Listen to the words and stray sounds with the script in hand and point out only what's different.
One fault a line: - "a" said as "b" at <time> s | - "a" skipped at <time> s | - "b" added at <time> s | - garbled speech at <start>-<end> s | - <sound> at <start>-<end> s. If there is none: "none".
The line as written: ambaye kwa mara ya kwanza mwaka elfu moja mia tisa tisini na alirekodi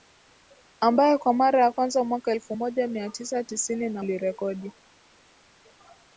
none